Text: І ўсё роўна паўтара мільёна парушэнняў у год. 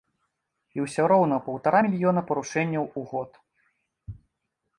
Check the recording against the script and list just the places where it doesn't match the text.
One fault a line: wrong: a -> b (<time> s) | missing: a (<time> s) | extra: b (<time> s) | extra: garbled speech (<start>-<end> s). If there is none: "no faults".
no faults